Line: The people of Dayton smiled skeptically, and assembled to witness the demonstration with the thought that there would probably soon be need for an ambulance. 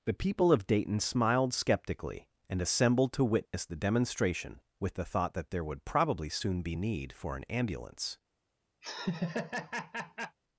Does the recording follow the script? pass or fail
pass